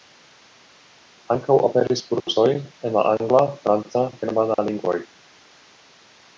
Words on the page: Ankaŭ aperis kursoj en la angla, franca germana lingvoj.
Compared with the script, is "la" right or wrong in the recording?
right